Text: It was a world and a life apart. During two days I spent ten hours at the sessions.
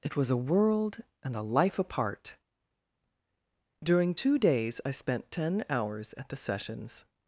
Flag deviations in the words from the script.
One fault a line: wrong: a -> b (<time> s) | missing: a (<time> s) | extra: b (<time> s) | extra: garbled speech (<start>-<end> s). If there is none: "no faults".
no faults